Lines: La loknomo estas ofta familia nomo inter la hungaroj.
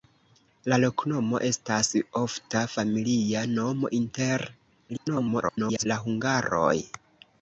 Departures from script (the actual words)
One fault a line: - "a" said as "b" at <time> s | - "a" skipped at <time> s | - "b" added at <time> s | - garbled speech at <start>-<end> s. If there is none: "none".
- garbled speech at 4.9-5.9 s